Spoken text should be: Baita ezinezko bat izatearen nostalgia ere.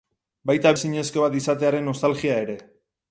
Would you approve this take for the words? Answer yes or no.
yes